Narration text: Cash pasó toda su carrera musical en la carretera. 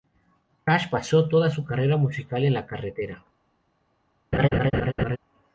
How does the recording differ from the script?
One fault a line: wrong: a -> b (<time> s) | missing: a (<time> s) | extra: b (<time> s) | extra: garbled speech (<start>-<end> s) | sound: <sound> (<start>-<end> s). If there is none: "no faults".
sound: laugh (4.3-5.2 s)